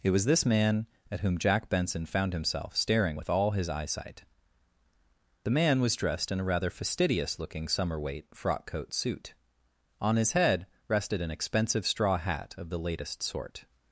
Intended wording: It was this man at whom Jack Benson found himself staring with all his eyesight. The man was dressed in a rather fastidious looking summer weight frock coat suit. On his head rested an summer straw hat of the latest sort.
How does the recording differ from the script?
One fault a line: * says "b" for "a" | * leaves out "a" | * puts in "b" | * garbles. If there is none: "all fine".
* says "expensive" for "summer"